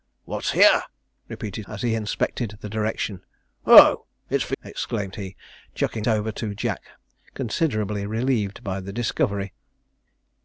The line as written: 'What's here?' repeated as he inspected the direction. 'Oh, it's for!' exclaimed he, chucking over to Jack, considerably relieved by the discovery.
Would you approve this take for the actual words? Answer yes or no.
yes